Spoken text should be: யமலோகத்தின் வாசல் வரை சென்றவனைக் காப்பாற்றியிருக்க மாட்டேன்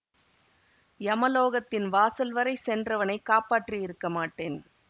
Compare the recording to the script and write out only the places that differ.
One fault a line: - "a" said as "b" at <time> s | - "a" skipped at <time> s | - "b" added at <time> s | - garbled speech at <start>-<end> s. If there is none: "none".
none